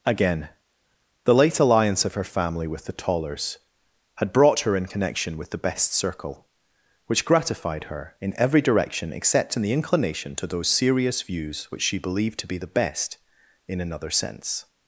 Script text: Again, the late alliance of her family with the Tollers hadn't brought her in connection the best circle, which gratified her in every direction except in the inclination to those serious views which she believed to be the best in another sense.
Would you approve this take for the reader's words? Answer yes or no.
no